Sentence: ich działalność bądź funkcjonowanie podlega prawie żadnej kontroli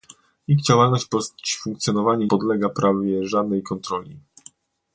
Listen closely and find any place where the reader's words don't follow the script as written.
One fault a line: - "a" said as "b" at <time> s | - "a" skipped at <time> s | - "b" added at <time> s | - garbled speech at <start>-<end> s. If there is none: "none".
none